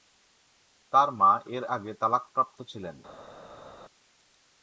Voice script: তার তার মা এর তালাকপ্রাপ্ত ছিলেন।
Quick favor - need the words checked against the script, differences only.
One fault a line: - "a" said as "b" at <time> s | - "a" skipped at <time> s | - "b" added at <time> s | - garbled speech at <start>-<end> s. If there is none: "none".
- "তার" skipped at 1.1 s
- "আগে" added at 1.7 s